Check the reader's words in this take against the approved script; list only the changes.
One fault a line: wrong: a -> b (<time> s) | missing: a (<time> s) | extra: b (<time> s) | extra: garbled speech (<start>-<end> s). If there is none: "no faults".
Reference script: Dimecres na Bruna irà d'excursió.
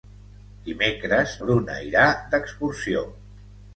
missing: na (1.4 s)